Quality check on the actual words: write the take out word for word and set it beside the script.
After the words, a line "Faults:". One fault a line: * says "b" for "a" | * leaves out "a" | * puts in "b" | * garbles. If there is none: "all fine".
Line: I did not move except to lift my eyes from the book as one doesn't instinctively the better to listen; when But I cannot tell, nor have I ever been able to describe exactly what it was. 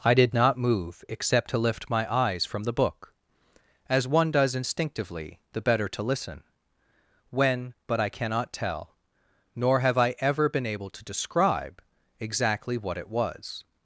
I did not move except to lift my eyes from the book as one does instinctively the better to listen; when But I cannot tell, nor have I ever been able to describe exactly what it was.
Faults:
* says "does" for "doesn't"